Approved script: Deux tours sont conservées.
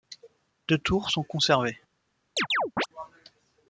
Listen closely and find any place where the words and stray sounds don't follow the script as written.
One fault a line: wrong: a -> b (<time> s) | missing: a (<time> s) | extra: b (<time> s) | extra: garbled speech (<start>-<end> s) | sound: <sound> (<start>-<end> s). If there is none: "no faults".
sound: chirp (2.4-2.9 s)